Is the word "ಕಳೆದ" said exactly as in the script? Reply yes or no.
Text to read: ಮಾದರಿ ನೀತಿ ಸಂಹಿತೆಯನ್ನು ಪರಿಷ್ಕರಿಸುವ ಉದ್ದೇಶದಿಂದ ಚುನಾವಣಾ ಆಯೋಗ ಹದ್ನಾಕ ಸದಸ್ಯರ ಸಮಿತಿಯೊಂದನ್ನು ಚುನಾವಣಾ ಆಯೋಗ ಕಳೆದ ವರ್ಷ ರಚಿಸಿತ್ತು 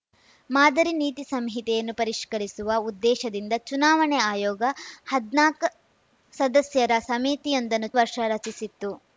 no